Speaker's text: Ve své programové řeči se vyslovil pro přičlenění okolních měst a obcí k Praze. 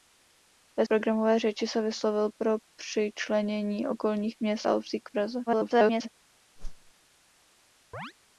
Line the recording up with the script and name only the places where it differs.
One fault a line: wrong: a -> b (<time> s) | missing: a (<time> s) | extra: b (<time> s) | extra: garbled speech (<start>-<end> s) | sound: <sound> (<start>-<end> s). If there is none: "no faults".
missing: své (0.8 s)
extra: garbled speech (5.5-6.1 s)
sound: whoosh (6.6-6.9 s)
sound: chirp (7.9-8.1 s)